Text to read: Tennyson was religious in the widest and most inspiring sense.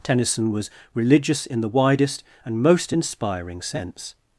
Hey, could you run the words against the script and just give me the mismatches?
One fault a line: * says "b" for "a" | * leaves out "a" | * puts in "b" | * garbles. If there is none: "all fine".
all fine